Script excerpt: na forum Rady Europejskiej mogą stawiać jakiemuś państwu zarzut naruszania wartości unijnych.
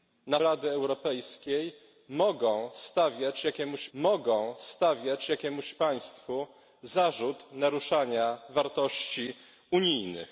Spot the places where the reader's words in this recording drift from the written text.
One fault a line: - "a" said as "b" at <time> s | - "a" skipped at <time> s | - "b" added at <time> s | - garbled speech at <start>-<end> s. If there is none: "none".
- "forum" skipped at 0.4 s
- "mogą stawiać jakiemuś" added at 3.9 s